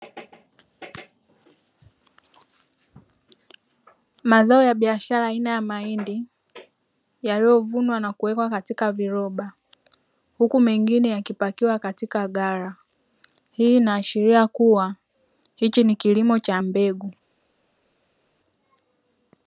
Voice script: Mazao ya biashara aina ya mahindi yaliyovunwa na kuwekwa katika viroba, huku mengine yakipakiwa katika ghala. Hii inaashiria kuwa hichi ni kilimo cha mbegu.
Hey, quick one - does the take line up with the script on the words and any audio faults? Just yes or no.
yes